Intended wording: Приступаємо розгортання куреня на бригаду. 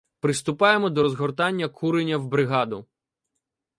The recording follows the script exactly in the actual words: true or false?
false